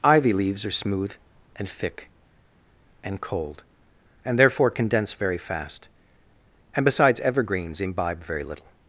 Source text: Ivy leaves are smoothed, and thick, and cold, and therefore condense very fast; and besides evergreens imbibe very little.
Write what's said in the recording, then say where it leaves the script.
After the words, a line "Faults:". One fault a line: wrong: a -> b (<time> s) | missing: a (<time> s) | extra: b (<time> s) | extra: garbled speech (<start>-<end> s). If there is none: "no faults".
Ivy leaves are smooth, and thick, and cold, and therefore condense very fast; and besides evergreens imbibe very little.
Faults:
wrong: smoothed -> smooth (0.7 s)